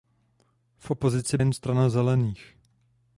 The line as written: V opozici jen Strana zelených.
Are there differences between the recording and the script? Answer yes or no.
no